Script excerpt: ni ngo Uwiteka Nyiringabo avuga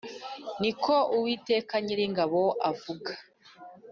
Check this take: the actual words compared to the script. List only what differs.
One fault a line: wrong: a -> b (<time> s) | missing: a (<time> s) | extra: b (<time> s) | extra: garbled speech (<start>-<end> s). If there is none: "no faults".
wrong: ngo -> ko (0.8 s)